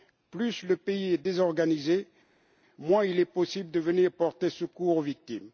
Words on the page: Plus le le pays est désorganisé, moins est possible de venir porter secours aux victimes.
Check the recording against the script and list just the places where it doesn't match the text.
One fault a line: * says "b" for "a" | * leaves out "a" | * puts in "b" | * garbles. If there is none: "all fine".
* leaves out "le"
* puts in "il"